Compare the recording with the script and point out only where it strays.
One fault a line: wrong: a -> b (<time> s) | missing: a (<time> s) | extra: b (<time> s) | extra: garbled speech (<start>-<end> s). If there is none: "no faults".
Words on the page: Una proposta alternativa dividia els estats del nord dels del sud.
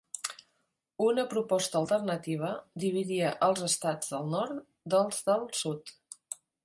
no faults